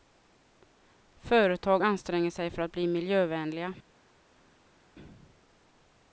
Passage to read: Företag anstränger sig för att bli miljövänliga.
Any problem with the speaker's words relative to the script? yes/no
no